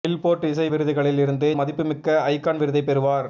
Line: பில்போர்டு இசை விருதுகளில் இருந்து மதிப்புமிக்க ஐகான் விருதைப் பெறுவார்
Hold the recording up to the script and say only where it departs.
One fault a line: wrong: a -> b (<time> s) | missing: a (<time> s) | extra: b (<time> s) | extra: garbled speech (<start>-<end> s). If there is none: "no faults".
no faults